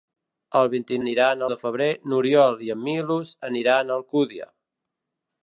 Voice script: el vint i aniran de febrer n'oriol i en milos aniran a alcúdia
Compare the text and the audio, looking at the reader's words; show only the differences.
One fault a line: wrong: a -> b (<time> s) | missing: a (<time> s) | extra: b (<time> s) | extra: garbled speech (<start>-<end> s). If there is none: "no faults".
no faults